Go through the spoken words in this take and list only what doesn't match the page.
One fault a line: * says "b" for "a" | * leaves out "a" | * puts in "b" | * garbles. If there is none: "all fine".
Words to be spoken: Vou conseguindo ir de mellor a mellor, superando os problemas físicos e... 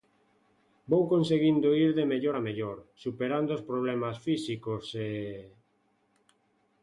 all fine